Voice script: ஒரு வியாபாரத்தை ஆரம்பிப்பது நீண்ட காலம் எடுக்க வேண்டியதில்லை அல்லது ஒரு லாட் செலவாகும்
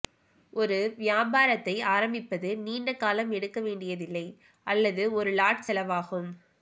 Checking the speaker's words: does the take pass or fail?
pass